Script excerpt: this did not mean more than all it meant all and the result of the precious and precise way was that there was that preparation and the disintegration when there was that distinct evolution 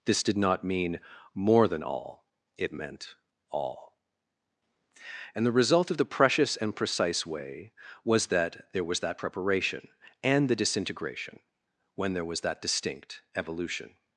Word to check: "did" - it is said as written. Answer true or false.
true